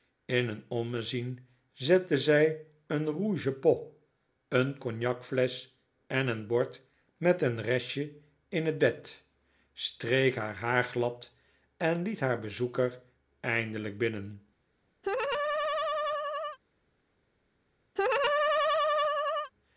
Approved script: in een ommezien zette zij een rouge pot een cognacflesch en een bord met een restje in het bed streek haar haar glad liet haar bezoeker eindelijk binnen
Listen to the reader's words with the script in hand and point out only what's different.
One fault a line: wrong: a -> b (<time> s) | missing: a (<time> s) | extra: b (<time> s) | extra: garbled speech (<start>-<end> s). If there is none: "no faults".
extra: en (11.8 s)